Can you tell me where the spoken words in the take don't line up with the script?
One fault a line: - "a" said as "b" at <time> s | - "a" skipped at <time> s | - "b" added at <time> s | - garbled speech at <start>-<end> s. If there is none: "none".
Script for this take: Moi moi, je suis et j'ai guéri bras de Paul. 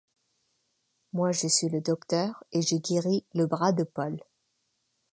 - "moi" skipped at 1.3 s
- "le docteur" added at 1.7 s
- "le" added at 3.4 s